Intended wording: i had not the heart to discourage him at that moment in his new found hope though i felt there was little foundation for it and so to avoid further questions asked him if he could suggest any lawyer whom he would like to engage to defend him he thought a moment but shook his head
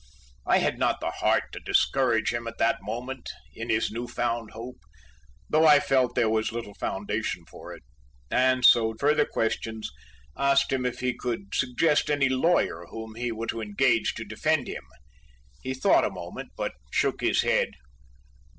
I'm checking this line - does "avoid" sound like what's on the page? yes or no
no